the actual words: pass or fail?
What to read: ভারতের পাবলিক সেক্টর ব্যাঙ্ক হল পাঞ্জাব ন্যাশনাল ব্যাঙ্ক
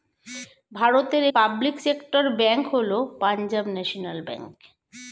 pass